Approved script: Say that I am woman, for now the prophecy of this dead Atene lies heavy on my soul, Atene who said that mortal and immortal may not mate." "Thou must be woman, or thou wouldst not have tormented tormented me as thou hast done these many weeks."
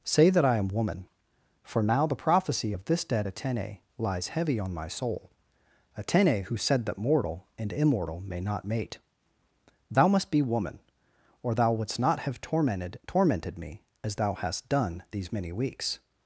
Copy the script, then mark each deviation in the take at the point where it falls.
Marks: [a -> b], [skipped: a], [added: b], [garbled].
Say that I am woman, for now the prophecy of this dead Atene lies heavy on my soul, Atene who said that mortal and immortal may not mate." "Thou must be woman, or thou wouldst not have tormented tormented me as thou hast done these many weeks."